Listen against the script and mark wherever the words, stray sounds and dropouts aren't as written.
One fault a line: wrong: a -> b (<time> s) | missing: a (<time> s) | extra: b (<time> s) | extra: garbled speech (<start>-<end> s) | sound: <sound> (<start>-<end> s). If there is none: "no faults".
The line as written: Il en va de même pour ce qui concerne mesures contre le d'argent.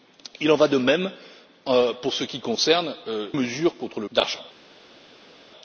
no faults